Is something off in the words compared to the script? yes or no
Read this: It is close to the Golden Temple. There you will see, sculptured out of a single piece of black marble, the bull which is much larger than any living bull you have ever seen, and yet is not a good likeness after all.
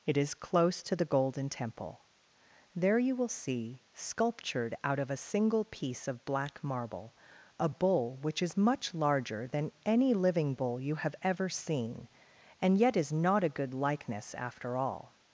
yes